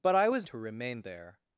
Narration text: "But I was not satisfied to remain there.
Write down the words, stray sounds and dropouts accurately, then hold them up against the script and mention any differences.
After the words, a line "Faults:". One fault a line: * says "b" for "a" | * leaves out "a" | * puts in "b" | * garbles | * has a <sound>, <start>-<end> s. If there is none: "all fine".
"But I was to remain there.
Faults:
* leaves out "not satisfied"